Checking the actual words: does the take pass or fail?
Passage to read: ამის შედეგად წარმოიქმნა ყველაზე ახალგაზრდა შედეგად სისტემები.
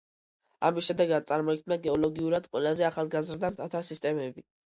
fail